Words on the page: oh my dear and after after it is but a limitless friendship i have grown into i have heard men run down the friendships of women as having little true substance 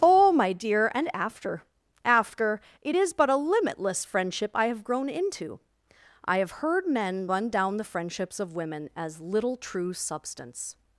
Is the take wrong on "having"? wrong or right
wrong